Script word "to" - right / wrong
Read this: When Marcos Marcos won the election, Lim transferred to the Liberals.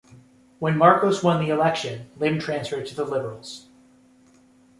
right